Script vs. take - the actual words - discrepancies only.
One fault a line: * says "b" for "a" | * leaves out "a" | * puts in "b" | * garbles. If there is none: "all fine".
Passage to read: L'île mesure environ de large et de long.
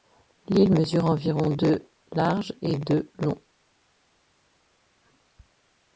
all fine